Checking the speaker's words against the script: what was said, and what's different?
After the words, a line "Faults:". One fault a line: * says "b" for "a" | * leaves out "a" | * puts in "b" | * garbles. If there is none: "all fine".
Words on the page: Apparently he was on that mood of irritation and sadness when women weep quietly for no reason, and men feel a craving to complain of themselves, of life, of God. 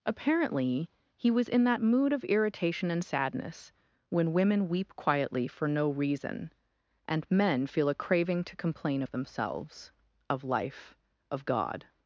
Apparently he was in that mood of irritation and sadness when women weep quietly for no reason, and men feel a craving to complain of themselves, of life, of God.
Faults:
* says "in" for "on"